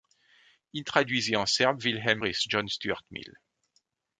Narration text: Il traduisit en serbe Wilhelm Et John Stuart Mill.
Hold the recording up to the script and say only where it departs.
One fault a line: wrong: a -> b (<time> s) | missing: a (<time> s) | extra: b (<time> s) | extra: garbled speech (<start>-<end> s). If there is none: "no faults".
no faults